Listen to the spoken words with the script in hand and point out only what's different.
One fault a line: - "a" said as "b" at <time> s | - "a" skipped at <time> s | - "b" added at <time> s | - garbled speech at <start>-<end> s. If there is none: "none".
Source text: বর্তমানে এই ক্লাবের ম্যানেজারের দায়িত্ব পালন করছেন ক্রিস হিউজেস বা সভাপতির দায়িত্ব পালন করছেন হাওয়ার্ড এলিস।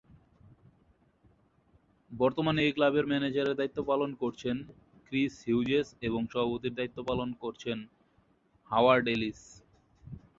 - "বা" said as "এবং" at 6.0 s